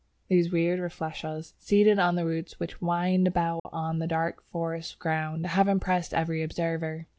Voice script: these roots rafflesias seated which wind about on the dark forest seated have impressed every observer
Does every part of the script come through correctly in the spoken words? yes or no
no